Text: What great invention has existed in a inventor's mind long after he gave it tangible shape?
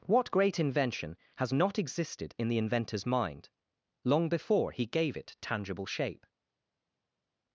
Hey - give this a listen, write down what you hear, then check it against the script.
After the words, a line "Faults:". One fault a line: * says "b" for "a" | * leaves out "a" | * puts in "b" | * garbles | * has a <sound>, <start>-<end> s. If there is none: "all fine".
What great invention has not existed in the inventor's mind long before he gave it tangible shape?
Faults:
* puts in "not"
* says "the" for "a"
* says "before" for "after"